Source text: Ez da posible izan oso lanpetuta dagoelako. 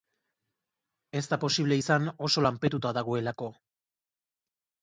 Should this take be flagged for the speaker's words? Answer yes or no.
no